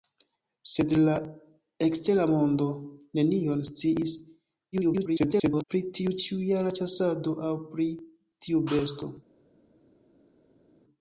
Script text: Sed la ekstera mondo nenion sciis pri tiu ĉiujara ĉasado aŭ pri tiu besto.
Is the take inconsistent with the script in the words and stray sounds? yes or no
yes